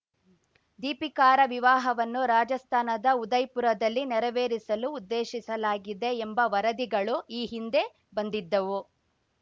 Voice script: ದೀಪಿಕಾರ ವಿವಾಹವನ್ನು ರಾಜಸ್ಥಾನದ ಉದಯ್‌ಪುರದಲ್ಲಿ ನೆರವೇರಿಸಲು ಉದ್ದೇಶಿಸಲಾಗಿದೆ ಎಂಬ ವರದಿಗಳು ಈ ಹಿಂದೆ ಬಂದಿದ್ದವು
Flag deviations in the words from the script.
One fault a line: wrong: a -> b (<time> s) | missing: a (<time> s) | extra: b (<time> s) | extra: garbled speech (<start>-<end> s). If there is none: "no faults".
no faults